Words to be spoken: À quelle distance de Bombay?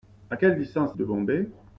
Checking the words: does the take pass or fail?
pass